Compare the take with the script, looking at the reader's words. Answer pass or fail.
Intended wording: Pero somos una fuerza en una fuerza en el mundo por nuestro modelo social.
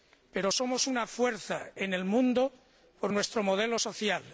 fail